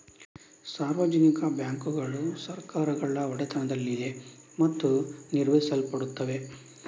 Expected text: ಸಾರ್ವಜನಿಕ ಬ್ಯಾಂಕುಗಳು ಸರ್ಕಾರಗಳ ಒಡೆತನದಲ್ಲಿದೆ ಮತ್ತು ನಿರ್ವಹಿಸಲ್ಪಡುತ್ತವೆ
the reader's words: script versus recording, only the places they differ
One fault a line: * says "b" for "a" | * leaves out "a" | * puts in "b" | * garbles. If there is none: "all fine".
all fine